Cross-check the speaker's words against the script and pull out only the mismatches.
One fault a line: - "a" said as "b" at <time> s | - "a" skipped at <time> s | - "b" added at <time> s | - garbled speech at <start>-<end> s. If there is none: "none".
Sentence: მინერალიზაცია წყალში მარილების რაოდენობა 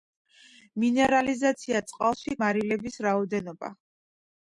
none